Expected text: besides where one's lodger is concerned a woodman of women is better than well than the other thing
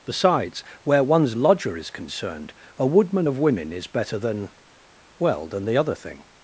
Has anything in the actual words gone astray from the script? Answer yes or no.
no